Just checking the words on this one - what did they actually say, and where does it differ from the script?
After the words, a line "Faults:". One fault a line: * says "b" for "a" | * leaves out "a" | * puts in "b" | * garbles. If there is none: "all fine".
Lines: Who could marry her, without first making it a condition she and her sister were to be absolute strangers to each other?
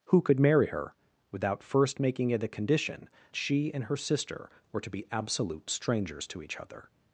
Who could marry her, without first making it a condition she and her sister were to be absolute strangers to each other?
Faults:
all fine